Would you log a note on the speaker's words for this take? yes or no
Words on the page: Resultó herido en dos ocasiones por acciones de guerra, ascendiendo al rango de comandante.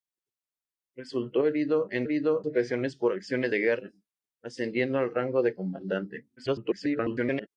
yes